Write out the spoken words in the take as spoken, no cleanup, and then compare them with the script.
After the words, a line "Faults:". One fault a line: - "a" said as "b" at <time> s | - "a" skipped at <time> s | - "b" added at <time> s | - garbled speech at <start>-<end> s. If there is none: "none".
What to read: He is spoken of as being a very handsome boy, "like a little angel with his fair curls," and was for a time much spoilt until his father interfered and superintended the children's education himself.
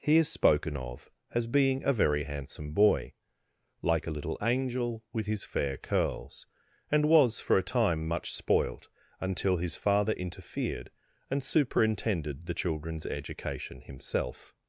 He is spoken of as being a very handsome boy, "like a little angel with his fair curls," and was for a time much spoilt until his father interfered and superintended the children's education himself.
Faults:
none